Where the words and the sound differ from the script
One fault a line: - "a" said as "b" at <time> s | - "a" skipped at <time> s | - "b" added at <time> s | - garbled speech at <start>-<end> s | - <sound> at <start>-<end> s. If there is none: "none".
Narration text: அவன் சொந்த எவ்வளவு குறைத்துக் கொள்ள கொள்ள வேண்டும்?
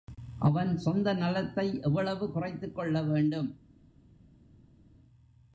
- "நலத்தை" added at 1.1 s
- "கொள்ள" skipped at 3.0 s